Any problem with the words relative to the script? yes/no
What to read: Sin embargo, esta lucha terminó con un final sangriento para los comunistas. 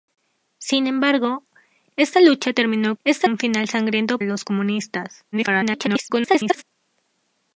yes